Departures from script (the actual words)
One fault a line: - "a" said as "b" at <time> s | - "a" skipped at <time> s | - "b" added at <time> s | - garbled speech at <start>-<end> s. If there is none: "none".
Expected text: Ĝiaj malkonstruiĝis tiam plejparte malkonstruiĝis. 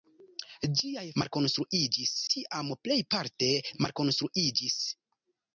none